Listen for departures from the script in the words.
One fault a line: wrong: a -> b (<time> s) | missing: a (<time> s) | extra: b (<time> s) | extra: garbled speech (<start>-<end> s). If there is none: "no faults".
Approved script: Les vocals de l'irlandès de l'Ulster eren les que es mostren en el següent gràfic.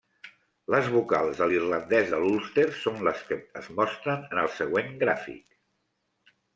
wrong: eren -> són (2.8 s)